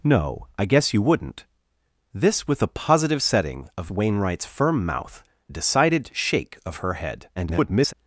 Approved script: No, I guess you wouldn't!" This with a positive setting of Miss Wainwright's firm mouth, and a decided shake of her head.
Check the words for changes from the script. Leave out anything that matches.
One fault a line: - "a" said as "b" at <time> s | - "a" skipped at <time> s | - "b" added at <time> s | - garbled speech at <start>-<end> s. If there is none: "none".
- "Miss" skipped at 3.9 s
- "and" skipped at 5.2 s
- garbled speech at 7.3-7.9 s